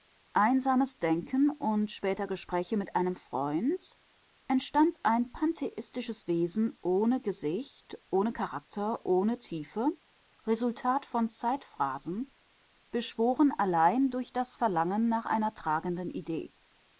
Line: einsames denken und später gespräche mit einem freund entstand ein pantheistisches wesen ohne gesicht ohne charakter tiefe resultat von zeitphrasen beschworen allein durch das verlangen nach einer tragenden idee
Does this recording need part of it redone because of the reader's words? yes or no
yes